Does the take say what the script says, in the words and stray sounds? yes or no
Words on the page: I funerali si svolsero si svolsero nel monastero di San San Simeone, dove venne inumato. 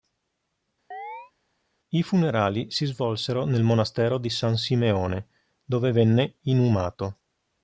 no